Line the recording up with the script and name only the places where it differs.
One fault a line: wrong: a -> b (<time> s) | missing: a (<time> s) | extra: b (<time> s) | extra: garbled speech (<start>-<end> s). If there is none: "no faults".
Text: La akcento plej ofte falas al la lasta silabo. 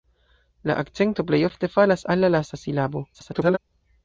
extra: garbled speech (3.1-3.6 s)